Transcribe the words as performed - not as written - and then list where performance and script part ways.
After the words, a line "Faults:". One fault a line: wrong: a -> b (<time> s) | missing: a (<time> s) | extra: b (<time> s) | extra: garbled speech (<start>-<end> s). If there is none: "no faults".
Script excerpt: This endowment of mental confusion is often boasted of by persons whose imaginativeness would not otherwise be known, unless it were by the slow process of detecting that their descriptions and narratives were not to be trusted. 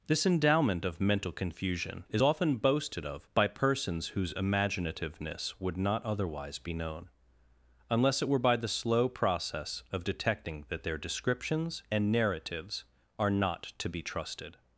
This endowment of mental confusion is often boasted of by persons whose imaginativeness would not otherwise be known, unless it were by the slow process of detecting that their descriptions and narratives are not to be trusted.
Faults:
wrong: were -> are (13.2 s)